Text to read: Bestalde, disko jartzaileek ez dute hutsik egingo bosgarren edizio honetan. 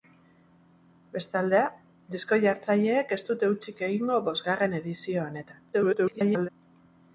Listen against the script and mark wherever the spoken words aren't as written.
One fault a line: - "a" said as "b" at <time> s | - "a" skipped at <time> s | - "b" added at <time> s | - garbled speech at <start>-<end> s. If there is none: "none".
- garbled speech at 5.7-6.5 s